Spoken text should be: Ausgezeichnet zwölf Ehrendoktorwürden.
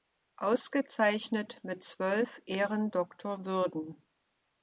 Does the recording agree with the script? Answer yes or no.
no